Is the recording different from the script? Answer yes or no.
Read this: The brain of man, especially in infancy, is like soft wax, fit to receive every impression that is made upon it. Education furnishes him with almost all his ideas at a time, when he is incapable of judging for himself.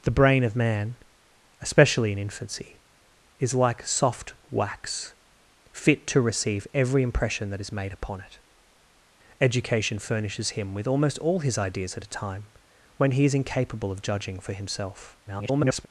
yes